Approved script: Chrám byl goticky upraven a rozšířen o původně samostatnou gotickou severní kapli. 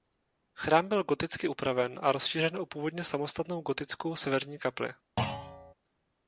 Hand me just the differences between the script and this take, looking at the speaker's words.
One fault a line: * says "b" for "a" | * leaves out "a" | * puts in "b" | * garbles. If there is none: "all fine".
all fine